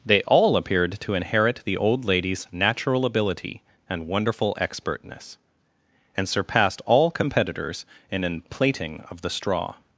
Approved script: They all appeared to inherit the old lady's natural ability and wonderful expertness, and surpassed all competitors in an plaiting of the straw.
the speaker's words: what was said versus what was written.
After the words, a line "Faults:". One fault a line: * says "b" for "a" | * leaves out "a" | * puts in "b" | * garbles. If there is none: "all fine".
They all appeared to inherit the old lady's natural ability and wonderful expertness, and surpassed all competitors in an plaiting of the straw.
Faults:
all fine